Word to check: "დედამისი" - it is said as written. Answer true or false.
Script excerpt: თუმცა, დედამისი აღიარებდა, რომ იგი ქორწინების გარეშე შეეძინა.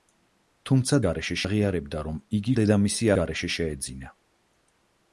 false